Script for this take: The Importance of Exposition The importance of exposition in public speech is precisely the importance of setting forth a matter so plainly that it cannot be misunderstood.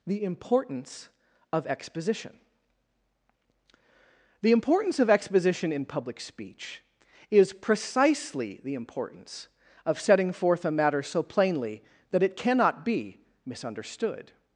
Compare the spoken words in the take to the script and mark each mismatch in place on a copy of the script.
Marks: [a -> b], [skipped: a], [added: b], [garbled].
The Importance of Exposition The importance of exposition in public speech is precisely the importance of setting forth a matter so plainly that it cannot be misunderstood.